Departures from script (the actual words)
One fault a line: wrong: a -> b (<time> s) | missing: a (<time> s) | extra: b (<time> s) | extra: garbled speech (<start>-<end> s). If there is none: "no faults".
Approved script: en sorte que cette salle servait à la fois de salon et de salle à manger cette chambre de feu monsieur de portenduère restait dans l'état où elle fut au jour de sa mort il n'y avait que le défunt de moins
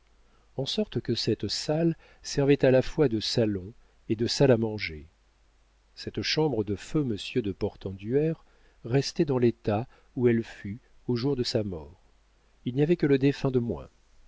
no faults